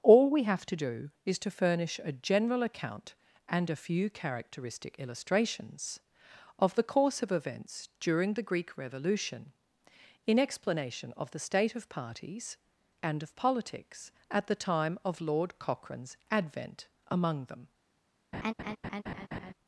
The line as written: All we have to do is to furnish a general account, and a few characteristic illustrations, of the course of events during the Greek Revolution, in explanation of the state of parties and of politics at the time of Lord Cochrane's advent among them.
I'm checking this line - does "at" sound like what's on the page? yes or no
yes